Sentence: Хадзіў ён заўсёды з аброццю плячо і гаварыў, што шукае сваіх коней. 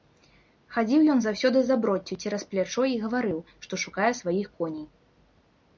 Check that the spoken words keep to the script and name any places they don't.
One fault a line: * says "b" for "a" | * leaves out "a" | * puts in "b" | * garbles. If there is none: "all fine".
* puts in "цераз"